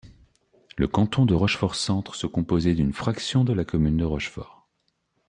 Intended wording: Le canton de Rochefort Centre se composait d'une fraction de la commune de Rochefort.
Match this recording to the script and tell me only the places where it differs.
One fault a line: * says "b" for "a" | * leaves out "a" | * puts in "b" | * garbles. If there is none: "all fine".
all fine